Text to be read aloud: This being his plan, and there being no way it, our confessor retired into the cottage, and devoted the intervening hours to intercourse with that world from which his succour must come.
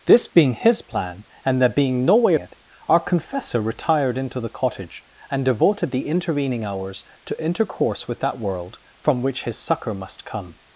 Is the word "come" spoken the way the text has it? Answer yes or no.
yes